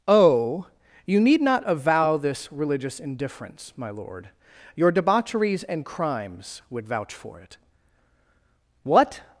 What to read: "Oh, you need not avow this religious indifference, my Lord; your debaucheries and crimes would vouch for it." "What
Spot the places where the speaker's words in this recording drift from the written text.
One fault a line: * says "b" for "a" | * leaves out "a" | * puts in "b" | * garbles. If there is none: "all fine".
all fine